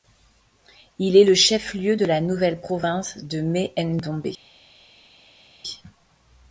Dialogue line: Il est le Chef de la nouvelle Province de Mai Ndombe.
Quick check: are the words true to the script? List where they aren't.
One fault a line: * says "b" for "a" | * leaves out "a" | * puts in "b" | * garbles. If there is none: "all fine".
* puts in "lieu"